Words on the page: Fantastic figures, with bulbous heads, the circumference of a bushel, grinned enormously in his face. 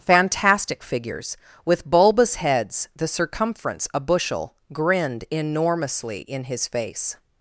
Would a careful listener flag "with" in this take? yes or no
no